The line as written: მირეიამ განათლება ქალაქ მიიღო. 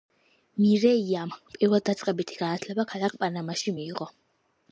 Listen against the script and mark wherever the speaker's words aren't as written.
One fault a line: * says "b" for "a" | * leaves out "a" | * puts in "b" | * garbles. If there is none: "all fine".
* puts in "პირველდაწყებითი"
* puts in "პანამაში"